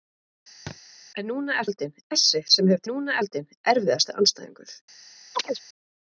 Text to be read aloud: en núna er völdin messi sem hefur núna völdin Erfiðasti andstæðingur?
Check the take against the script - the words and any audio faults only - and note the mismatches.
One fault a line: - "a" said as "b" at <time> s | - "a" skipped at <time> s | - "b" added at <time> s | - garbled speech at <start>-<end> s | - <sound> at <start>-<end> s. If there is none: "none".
- thud at 0.7-0.8 s
- chirp at 5.3-5.6 s